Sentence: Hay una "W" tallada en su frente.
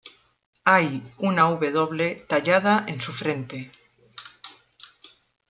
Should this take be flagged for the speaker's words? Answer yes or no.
no